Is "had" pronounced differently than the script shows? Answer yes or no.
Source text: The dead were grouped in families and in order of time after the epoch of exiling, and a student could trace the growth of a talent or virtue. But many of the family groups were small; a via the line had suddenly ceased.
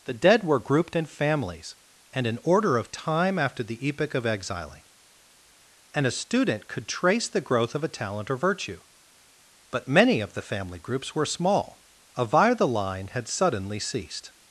no